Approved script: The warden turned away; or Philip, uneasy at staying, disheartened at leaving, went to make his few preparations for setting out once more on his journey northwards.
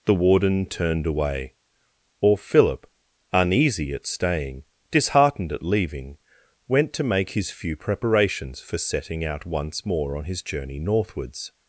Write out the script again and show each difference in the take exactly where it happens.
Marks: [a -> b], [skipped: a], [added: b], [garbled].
The warden turned away; or Philip, uneasy at staying, disheartened at leaving, went to make his few preparations for setting out once more on his journey northwards.